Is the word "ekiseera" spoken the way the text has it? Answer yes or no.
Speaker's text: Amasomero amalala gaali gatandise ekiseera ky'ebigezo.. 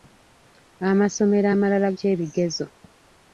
no